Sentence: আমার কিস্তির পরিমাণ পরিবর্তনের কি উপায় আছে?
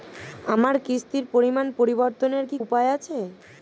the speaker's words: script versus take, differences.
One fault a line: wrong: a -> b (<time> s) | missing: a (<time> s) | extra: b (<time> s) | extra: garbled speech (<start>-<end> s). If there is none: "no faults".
no faults